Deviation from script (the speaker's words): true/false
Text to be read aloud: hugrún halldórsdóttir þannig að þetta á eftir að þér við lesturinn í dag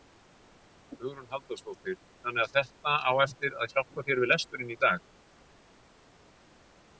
true